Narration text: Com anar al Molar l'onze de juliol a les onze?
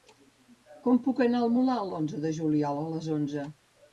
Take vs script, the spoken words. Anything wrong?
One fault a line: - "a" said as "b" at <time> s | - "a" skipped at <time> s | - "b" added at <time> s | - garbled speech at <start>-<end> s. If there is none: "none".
- "puc" added at 1.1 s